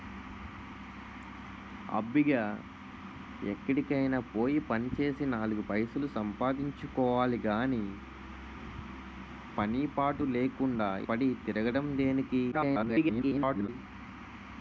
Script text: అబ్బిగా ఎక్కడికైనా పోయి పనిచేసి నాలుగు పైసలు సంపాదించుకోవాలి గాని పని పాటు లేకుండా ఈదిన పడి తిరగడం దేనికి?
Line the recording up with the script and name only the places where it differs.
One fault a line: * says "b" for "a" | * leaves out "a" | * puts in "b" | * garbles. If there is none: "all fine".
* leaves out "ఈదిన"
* garbles